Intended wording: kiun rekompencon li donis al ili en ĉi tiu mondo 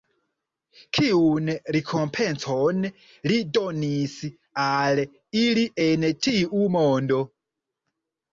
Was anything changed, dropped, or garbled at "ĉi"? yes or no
yes